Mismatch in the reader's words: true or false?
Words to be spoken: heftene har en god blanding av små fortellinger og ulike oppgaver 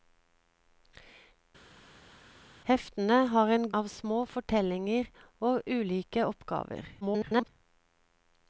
true